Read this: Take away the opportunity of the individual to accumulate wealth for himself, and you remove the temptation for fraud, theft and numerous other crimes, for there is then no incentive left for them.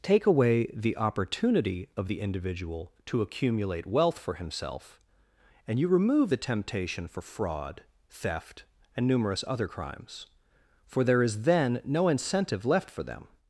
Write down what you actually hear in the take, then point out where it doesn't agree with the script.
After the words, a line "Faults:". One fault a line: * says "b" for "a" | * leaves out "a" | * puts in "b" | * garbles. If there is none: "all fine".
Take away the opportunity of the individual to accumulate wealth for himself, and you remove the temptation for fraud, theft and numerous other crimes, for there is then no incentive left for them.
Faults:
all fine